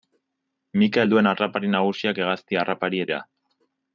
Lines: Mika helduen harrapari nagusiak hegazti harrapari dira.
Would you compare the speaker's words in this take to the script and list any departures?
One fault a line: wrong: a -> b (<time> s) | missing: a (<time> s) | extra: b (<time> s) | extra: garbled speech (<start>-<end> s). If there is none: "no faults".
no faults